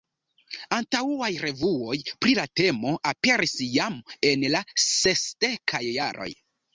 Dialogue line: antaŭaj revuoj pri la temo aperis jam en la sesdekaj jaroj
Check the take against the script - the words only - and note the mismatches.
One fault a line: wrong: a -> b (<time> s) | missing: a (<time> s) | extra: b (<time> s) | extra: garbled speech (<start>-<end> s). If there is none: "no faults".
no faults